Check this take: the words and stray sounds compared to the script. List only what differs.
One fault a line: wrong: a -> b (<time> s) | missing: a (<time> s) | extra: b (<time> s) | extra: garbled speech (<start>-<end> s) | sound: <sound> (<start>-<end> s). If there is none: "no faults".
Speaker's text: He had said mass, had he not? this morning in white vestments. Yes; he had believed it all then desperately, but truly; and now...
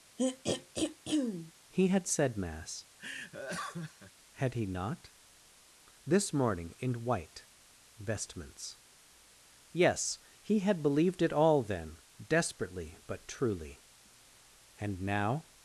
sound: throat clearing (0.2-1.5 s)
sound: laugh (3.0-4.1 s)